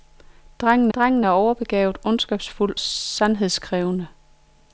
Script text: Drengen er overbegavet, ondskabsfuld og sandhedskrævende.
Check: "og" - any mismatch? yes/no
yes